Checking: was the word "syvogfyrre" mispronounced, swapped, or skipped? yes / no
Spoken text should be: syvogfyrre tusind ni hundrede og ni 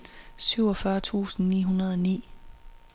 no